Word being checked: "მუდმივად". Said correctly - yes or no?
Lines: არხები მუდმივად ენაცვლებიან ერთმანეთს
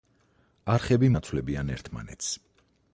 no